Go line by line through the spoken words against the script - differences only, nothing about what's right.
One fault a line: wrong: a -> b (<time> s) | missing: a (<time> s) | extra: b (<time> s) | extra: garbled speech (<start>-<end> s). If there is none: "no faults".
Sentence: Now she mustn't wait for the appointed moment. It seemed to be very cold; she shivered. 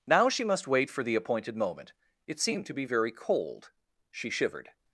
wrong: mustn't -> must (0.4 s)